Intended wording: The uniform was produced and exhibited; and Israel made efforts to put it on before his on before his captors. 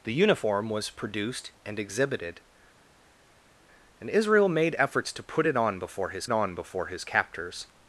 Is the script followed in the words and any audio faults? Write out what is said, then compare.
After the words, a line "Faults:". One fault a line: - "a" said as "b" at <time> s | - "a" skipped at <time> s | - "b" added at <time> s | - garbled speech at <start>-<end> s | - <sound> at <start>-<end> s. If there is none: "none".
The uniform was produced and exhibited; and Israel made efforts to put it on before his on before his captors.
Faults:
none